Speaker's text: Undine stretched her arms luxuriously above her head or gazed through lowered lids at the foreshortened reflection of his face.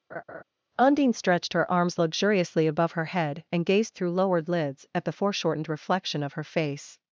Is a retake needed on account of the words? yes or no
yes